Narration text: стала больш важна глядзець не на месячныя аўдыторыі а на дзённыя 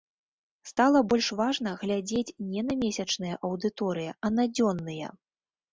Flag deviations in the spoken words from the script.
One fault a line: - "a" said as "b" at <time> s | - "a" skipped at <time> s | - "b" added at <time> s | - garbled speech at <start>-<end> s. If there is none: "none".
none